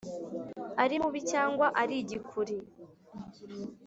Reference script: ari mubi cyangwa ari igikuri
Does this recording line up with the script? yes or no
yes